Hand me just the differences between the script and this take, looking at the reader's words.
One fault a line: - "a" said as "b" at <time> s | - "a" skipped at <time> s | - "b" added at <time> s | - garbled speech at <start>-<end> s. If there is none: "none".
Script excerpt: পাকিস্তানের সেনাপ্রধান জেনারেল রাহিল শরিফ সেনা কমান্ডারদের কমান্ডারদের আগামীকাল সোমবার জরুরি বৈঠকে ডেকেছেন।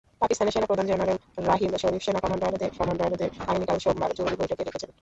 none